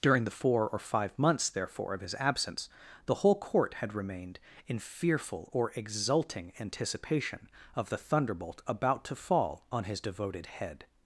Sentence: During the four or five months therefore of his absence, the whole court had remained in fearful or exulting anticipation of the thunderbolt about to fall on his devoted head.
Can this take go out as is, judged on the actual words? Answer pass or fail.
pass